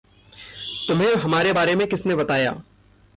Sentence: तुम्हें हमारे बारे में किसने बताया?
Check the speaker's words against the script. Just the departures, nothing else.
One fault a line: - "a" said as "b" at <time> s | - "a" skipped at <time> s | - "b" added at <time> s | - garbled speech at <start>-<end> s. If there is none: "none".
none